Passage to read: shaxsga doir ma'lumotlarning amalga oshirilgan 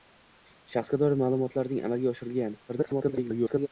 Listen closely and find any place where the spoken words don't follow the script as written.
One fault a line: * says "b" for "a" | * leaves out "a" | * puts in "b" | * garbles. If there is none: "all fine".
* garbles